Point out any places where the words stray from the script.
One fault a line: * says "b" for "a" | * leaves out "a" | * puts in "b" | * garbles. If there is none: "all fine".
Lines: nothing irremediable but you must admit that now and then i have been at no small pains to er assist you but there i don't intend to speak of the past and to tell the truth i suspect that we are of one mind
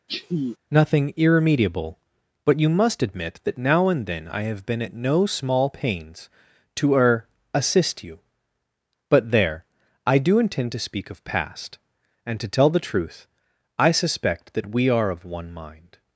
* says "do" for "don't"
* leaves out "the"